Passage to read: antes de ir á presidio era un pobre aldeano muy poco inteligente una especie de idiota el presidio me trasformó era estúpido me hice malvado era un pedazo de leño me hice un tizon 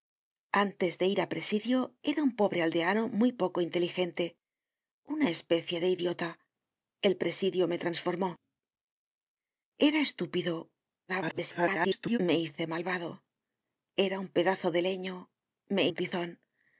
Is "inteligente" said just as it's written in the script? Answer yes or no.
yes